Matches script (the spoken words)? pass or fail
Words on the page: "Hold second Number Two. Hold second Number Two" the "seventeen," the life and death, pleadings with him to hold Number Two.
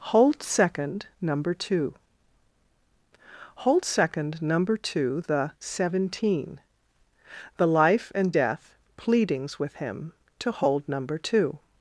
pass